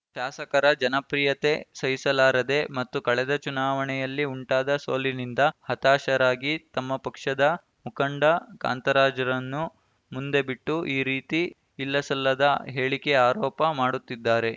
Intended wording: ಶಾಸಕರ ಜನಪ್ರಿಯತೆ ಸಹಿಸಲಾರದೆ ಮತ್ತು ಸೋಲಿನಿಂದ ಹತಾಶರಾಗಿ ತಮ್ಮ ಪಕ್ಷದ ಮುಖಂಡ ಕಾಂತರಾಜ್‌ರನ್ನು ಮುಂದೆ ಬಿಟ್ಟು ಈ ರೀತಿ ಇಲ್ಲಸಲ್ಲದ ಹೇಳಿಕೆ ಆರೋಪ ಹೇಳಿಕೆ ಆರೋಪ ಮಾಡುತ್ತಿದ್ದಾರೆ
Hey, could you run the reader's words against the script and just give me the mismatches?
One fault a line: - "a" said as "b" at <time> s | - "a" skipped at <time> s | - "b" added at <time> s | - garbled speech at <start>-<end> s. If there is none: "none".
- "ಕಳೆದ ಚುನಾವಣೆಯಲ್ಲಿ ಉಂಟಾದ" added at 3.0 s
- "ಹೇಳಿಕೆ ಆರೋಪ" skipped at 13.6 s